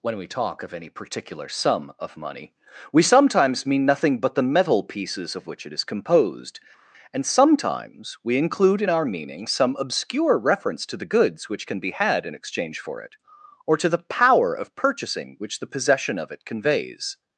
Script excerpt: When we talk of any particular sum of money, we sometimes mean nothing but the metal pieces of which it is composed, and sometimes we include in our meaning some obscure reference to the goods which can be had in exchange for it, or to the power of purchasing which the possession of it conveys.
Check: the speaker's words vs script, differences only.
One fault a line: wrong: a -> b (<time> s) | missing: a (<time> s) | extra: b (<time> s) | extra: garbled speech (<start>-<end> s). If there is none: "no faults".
no faults